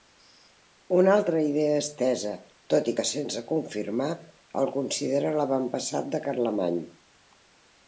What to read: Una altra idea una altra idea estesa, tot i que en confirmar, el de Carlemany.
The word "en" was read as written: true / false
false